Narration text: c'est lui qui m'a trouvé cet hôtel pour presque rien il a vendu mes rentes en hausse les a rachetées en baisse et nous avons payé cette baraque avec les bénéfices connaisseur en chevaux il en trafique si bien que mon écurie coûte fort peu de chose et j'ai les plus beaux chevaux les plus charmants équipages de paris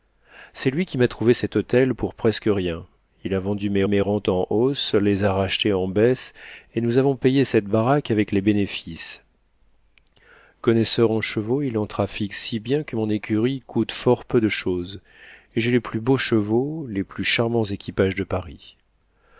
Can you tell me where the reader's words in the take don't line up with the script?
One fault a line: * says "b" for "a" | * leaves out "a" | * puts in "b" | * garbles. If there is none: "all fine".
* puts in "mes"